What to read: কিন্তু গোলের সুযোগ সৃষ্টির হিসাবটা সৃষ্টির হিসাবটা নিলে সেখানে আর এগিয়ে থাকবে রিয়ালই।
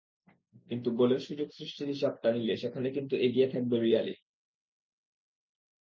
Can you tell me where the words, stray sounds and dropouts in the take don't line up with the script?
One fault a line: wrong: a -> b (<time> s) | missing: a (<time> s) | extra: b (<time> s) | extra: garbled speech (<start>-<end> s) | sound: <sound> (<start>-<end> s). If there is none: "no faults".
missing: সৃষ্টির হিসাবটা (2.3 s)
wrong: আর -> কিন্তু (2.9 s)